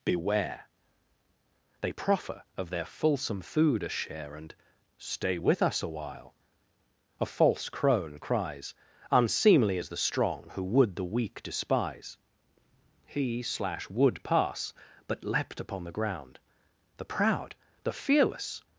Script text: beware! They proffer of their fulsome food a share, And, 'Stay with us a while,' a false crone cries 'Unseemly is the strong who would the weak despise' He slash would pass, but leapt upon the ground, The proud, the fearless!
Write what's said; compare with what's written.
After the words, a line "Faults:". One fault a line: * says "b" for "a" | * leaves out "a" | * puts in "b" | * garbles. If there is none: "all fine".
beware! They proffer of their fulsome food a share, And, 'Stay with us a while,' a false crone cries 'Unseemly is the strong who would the weak despise' He slash would pass, but leapt upon the ground, The proud, the fearless!
Faults:
all fine